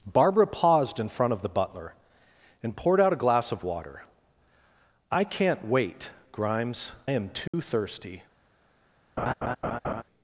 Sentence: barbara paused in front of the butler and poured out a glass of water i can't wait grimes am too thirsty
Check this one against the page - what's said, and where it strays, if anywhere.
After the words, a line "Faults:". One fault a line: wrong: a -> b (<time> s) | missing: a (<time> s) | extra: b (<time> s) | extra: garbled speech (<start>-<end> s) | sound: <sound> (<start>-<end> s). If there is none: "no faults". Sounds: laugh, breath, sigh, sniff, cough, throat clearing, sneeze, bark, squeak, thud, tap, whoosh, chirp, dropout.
barbara paused in front of the butler and poured out a glass of water i can't wait grimes am too thirsty
Faults:
sound: dropout (7.5-7.5 s)
sound: laugh (9.2-10.0 s)